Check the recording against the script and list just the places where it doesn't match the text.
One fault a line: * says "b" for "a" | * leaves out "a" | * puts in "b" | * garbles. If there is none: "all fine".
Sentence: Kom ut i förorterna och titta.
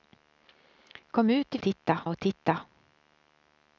* says "titta" for "förorterna"